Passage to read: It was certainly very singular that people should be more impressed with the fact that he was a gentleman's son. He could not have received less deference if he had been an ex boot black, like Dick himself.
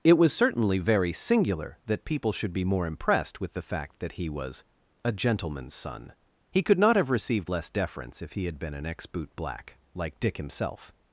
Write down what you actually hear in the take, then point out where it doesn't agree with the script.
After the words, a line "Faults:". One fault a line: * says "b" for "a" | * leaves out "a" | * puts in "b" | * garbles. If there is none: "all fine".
It was certainly very singular that people should be more impressed with the fact that he was a gentleman's son. He could not have received less deference if he had been an ex boot black, like Dick himself.
Faults:
all fine